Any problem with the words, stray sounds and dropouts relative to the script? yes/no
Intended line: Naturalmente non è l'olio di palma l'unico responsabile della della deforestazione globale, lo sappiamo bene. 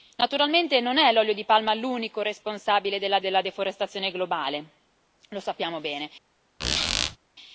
yes